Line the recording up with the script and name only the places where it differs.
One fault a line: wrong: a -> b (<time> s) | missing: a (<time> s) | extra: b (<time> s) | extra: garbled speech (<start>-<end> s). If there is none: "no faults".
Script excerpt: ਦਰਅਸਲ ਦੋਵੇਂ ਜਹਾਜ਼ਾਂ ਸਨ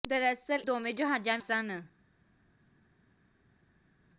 no faults